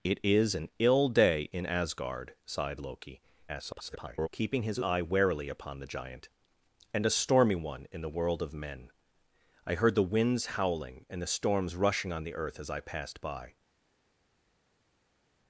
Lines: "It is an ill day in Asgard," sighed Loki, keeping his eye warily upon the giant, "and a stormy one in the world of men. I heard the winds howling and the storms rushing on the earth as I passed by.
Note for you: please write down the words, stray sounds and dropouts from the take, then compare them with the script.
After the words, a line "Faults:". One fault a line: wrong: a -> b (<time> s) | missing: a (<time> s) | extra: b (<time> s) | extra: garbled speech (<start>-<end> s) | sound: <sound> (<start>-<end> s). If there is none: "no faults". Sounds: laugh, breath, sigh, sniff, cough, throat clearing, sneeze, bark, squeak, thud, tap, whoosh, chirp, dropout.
"It is an ill day in Asgard," sighed Loki, [garbled] keeping his eye warily upon the giant, "and a stormy one in the world of men. I heard the winds howling and the storms rushing on the earth as I passed by.
Faults:
extra: garbled speech (3.5-4.3 s)